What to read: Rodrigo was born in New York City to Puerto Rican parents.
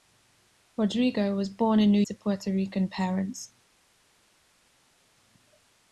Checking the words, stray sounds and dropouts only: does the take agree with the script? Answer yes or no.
no